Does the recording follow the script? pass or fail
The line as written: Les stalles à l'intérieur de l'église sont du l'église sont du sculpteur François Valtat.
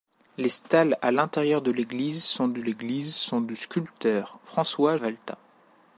pass